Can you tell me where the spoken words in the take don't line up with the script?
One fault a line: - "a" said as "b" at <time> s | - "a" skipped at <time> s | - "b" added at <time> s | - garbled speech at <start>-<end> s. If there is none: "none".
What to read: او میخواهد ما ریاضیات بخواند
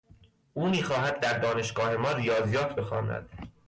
- "در دانشگاه" added at 1.2 s